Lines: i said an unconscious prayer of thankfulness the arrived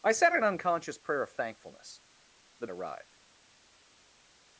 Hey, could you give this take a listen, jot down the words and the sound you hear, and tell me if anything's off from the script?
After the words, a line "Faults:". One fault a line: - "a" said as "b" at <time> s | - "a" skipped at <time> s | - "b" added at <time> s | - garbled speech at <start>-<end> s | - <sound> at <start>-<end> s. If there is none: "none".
i said an unconscious prayer of thankfulness the arrived
Faults:
none